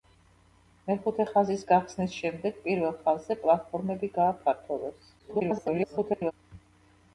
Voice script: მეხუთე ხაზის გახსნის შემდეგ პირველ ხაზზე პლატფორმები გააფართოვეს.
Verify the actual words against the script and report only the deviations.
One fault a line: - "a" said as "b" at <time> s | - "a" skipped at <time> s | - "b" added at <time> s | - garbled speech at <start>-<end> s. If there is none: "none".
- garbled speech at 5.2-6.3 s